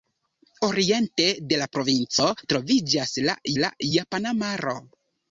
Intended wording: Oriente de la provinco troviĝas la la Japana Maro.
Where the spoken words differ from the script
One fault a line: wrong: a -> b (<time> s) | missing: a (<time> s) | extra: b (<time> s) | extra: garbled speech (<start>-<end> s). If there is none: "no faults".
no faults